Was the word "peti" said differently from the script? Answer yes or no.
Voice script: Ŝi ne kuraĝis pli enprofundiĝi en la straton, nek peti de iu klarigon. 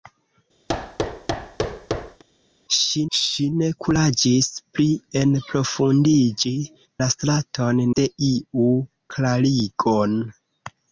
yes